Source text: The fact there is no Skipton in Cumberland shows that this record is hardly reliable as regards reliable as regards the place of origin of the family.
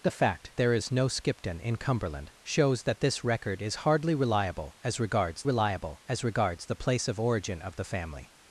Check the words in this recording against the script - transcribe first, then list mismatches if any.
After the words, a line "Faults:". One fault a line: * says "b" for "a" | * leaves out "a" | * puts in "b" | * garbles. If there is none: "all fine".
The fact there is no Skipton in Cumberland shows that this record is hardly reliable as regards reliable as regards the place of origin of the family.
Faults:
all fine